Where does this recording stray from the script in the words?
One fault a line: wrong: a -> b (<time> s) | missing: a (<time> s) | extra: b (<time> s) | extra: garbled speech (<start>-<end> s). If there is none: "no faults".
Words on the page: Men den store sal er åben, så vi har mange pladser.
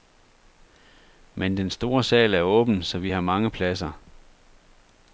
no faults